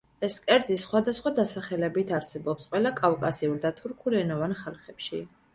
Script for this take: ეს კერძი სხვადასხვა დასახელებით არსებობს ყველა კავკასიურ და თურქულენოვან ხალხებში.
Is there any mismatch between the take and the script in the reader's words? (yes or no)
no